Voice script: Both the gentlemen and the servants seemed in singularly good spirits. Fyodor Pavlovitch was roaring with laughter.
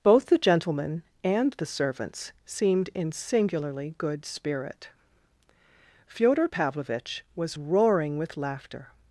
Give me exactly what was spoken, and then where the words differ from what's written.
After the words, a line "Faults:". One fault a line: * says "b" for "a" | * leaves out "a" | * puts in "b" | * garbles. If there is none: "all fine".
Both the gentlemen and the servants seemed in singularly good spirit. Fyodor Pavlovitch was roaring with laughter.
Faults:
* says "spirit" for "spirits"